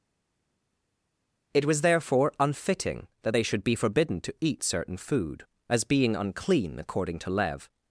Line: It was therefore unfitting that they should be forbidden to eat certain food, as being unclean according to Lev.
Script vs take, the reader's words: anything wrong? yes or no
no